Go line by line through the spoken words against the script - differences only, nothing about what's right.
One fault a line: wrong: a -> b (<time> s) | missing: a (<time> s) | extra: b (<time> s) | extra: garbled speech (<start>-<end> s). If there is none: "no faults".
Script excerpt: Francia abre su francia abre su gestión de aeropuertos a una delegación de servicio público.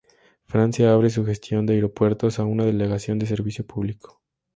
missing: francia abre su (1.2 s)